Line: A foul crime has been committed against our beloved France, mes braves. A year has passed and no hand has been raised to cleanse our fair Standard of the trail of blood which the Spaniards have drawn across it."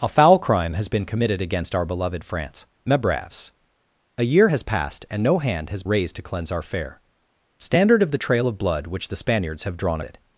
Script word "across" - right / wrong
wrong